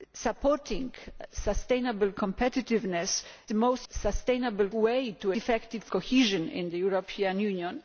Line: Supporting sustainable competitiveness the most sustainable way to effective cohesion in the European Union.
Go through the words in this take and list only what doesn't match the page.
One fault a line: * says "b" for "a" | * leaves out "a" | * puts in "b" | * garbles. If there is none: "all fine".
all fine